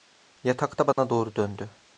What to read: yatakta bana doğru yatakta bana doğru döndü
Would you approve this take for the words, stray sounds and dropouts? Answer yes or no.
no